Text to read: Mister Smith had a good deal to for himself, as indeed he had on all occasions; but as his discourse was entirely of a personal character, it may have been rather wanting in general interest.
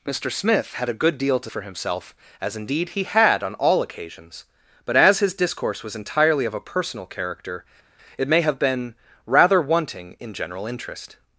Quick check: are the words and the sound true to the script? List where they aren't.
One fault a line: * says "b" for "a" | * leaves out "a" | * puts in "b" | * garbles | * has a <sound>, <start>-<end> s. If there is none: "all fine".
all fine